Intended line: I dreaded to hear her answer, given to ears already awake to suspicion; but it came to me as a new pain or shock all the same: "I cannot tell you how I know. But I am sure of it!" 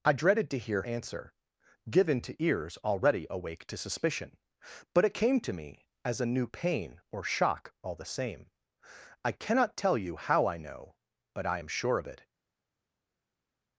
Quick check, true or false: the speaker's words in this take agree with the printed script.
false